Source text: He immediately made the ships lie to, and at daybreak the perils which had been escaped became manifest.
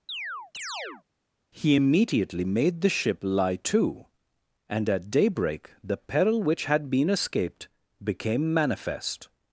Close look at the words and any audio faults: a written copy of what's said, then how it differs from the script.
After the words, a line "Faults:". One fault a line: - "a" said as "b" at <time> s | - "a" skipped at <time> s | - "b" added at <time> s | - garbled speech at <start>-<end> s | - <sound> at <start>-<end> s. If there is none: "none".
He immediately made the ship lie to, and at daybreak the peril which had been escaped became manifest.
Faults:
- chirp at 0.1-1.0 s
- "ships" said as "ship" at 2.9 s
- "perils" said as "peril" at 6.0 s